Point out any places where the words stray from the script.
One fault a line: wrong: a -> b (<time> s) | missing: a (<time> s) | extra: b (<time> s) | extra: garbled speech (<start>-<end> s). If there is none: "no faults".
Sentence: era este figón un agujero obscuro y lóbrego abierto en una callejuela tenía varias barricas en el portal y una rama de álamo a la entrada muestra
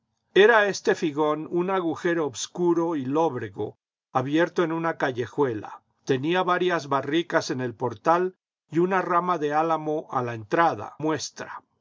no faults